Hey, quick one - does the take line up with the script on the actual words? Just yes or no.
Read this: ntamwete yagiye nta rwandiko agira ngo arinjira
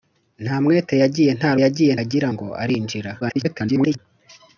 no